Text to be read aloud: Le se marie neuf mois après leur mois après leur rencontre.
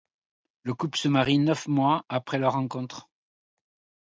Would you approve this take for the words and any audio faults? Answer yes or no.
no